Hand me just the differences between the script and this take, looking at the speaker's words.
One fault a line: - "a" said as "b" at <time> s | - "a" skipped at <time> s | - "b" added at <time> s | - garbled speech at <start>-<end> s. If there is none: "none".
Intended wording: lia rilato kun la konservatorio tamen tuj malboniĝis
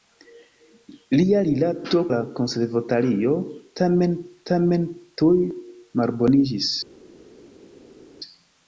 - "kun" skipped at 2.0 s
- "tamen" added at 4.5 s